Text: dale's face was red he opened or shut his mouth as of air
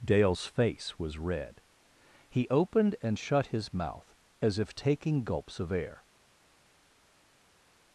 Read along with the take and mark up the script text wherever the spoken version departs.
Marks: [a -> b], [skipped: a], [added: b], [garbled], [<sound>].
dale's face was red he opened [or -> and] shut his mouth as [added: if taking gulps] of air